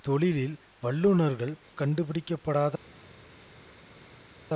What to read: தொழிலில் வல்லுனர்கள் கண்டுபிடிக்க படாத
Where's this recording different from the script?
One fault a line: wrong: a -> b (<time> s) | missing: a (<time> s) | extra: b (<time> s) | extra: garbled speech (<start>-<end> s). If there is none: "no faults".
no faults